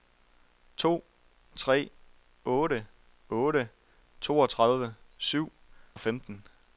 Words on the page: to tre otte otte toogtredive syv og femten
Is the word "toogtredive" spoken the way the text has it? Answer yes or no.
yes